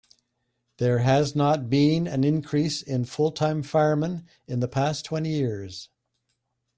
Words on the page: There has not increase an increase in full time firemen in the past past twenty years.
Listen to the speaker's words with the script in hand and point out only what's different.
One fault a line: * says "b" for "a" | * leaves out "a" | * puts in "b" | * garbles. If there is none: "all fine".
* says "been" for "increase"
* leaves out "past"